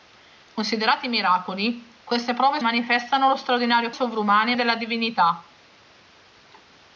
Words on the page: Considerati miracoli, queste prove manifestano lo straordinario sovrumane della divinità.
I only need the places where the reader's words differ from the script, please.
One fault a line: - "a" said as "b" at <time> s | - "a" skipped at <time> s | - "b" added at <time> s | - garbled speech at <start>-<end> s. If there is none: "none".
none